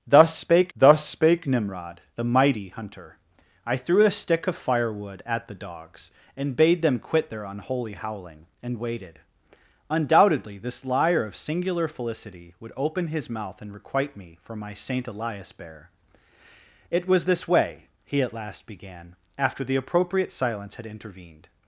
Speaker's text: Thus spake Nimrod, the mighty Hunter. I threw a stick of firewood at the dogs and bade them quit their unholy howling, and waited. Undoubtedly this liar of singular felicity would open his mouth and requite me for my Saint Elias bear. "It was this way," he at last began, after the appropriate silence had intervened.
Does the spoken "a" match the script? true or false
true